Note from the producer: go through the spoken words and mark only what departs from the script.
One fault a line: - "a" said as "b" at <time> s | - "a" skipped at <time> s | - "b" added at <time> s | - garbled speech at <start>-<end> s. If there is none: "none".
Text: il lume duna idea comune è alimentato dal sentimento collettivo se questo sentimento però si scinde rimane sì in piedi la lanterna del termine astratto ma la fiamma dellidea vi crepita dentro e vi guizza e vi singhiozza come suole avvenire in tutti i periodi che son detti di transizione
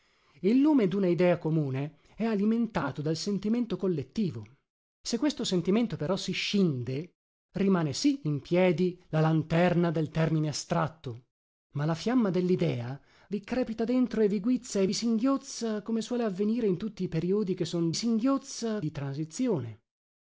- "detti" said as "singhiozza" at 17.9 s